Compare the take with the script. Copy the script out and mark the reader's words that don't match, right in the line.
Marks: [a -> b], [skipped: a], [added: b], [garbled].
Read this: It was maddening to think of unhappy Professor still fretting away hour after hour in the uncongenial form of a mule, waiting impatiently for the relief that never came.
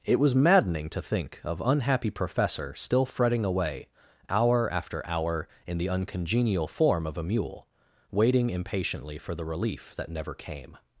It was maddening to think of unhappy Professor still fretting away hour after hour in the uncongenial form of a mule, waiting impatiently for the relief that never came.